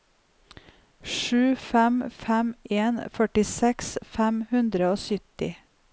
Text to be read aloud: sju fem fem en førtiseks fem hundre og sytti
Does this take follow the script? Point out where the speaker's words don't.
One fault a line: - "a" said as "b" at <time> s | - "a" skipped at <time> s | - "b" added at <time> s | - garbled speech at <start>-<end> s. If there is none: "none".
none